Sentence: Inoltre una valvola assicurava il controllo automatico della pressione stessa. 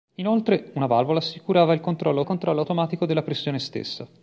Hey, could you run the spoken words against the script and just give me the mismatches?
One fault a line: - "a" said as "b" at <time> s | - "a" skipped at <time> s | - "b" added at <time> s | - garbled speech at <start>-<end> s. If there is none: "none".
- "controllo" added at 2.2 s